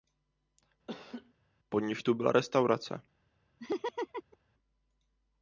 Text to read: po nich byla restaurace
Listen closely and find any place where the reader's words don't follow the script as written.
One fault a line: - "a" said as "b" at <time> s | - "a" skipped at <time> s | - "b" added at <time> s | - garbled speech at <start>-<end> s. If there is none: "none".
- "tu" added at 2.0 s